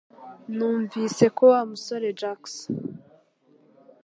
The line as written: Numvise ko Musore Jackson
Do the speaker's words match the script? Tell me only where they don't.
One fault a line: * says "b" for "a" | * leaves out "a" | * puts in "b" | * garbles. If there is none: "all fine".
* puts in "Wa"